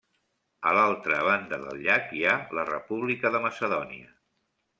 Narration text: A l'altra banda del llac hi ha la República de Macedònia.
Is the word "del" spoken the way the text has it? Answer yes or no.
yes